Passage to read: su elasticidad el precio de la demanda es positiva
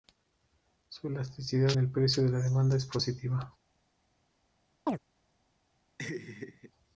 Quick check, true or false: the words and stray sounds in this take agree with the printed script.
false